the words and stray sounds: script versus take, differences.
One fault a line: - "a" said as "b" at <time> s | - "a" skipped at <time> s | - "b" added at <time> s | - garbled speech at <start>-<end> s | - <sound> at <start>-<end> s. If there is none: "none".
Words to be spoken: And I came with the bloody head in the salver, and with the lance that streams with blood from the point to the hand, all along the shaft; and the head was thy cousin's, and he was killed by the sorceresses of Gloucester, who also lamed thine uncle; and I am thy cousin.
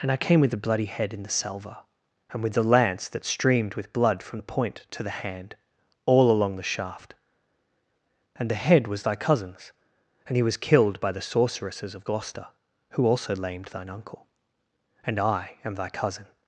- "streams" said as "streamed" at 3.2 s